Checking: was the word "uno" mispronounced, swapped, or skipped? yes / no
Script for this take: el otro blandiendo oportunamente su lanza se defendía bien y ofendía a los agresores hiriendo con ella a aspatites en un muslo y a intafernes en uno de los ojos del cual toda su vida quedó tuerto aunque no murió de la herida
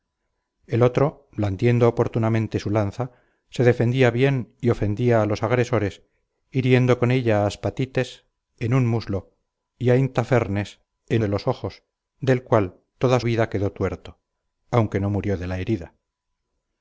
yes